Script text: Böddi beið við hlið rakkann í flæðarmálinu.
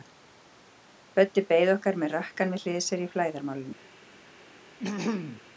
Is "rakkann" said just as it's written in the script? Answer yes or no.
no